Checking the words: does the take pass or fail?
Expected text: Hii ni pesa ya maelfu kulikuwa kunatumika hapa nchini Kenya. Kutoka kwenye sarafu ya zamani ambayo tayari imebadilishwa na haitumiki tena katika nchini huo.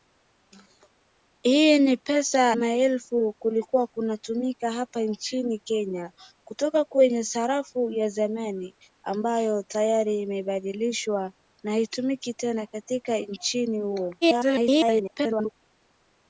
fail